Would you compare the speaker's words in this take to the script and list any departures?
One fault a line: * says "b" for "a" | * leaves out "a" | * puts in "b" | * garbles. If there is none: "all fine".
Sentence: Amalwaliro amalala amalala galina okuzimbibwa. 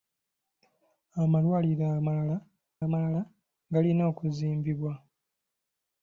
all fine